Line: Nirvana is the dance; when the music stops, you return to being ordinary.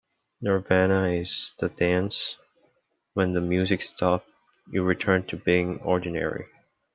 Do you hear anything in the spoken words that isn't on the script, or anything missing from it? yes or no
no